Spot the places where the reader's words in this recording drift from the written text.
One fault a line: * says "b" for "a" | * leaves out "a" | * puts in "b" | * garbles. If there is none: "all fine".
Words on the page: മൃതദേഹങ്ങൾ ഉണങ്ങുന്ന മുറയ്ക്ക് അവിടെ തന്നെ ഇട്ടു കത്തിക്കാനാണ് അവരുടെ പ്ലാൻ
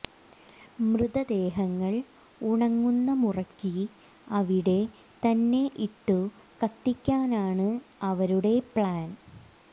all fine